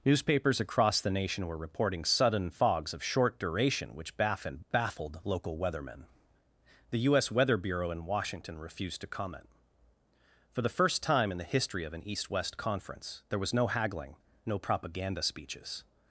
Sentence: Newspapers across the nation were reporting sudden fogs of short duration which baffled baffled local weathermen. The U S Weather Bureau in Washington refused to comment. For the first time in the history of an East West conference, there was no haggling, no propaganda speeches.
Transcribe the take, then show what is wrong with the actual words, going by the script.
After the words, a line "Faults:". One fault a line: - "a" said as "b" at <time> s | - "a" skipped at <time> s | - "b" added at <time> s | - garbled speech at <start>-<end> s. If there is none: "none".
Newspapers across the nation were reporting sudden fogs of short duration which baffled baffled local weathermen. The U S Weather Bureau in Washington refused to comment. For the first time in the history of an East West conference, there was no haggling, no propaganda speeches.
Faults:
none